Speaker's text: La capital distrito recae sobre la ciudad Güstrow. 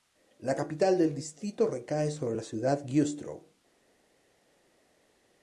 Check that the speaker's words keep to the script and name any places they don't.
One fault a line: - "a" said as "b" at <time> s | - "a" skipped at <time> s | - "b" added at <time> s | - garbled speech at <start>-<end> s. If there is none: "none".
- "del" added at 1.0 s